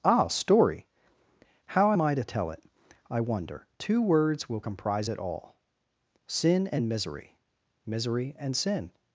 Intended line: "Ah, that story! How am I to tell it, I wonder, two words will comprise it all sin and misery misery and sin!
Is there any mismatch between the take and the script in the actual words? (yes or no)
yes